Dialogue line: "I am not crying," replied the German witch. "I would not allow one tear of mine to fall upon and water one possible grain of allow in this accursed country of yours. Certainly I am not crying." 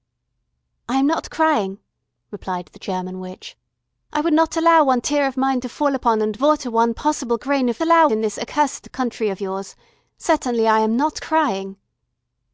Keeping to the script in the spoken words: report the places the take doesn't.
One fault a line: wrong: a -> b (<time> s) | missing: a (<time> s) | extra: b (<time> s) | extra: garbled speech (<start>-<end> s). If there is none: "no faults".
no faults